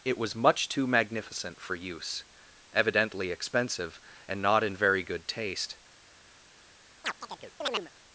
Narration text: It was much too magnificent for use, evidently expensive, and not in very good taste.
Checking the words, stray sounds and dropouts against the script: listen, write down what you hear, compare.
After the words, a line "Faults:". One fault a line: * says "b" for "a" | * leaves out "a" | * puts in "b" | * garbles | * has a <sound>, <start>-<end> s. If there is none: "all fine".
It was much too magnificent for use, evidently expensive, and not in very good taste.
Faults:
* has a chirp, 7.0-7.9 s